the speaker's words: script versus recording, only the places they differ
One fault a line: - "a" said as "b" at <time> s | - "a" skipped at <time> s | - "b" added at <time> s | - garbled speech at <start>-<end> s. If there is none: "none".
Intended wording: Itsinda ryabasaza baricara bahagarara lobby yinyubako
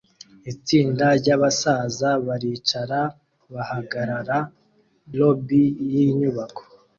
none